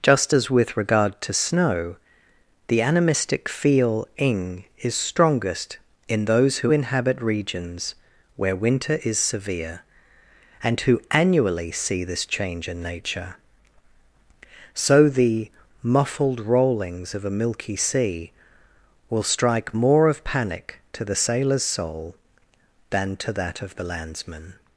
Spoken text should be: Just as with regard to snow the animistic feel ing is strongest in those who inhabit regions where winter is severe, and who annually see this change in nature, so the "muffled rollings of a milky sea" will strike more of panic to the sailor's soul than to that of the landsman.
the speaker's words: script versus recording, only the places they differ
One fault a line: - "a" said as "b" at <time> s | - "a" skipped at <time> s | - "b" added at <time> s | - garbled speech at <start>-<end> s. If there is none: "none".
none